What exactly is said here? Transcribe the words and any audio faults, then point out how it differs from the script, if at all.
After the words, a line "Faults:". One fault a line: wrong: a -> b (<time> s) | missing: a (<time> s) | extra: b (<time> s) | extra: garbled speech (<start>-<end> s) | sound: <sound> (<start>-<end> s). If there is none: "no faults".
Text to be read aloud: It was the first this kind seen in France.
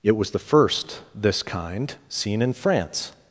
It was the first this kind seen in France.
Faults:
no faults